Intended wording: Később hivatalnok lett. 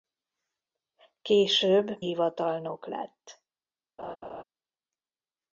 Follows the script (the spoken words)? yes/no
yes